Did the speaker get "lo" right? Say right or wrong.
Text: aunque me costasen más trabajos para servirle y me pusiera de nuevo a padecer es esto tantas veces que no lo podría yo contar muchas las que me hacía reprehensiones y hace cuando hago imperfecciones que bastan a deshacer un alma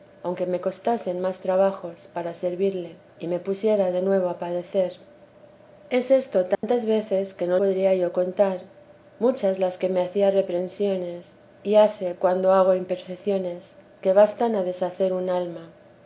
wrong